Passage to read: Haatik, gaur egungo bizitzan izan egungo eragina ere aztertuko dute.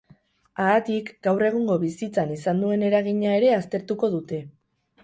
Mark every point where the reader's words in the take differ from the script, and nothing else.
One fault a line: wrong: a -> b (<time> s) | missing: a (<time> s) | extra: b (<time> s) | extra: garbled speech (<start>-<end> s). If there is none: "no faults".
wrong: egungo -> duen (2.7 s)